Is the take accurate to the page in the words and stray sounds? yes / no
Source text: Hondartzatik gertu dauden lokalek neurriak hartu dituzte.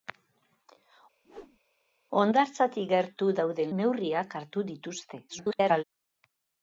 no